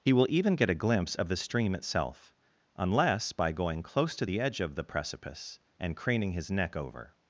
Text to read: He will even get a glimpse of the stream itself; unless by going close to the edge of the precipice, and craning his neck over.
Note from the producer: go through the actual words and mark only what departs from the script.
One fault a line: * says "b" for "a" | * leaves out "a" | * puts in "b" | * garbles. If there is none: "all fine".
all fine